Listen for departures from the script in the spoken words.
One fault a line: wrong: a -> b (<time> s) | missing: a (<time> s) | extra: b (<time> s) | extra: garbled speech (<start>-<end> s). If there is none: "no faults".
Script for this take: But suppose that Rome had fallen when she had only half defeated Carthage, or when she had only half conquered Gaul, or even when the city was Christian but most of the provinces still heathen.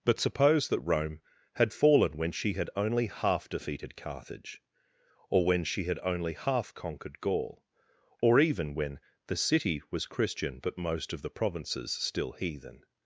no faults